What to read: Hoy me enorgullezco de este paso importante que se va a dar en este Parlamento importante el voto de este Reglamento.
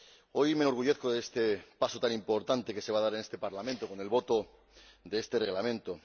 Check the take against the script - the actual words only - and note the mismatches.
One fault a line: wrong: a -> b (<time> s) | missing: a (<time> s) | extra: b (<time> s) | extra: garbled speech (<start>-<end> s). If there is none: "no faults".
extra: tan (2.0 s)
wrong: importante -> con (3.9 s)